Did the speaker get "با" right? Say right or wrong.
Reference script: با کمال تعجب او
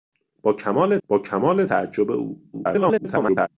right